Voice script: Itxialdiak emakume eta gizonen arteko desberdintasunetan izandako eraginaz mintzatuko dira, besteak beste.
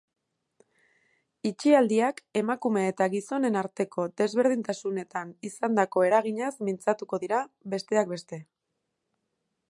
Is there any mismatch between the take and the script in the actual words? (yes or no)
no